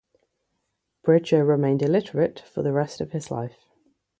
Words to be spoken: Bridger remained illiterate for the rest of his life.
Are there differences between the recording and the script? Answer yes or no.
no